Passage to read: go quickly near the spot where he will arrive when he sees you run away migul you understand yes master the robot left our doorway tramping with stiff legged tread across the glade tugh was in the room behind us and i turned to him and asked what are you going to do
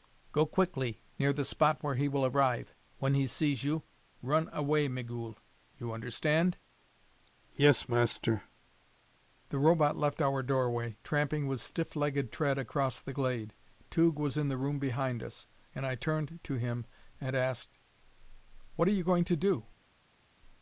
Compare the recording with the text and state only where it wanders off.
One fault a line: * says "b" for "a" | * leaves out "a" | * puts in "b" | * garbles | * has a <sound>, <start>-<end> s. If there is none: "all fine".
all fine